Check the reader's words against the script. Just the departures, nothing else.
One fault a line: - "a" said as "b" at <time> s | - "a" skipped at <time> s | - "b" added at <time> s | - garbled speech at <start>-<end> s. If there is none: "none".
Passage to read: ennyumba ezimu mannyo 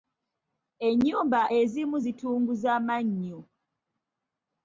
- "zitunguza" added at 2.0 s